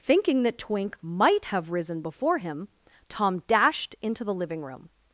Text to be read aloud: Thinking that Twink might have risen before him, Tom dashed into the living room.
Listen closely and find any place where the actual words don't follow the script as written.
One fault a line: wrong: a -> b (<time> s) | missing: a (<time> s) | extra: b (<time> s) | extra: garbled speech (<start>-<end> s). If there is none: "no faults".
no faults